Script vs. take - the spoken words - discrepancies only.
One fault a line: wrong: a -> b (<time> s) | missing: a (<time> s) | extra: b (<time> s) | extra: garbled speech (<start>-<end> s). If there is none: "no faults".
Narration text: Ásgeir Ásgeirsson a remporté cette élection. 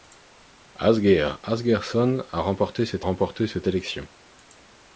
extra: remporté cette (3.0 s)